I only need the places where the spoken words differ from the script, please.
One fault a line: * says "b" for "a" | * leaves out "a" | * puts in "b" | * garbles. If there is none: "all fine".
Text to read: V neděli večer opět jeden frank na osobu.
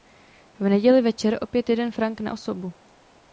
all fine